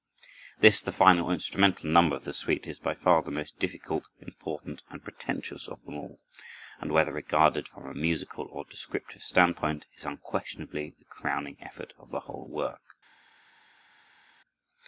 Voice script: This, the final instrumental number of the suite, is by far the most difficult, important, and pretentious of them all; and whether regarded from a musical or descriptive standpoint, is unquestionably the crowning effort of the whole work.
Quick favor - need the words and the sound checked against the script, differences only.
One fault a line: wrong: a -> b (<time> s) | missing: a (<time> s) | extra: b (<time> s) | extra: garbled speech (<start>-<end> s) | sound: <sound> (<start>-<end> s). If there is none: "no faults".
no faults